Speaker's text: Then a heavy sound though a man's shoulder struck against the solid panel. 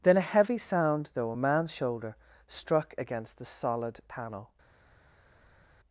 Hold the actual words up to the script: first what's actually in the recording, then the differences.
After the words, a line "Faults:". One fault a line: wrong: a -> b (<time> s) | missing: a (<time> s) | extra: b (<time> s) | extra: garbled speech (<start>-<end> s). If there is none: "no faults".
Then a heavy sound though a man's shoulder struck against the solid panel.
Faults:
no faults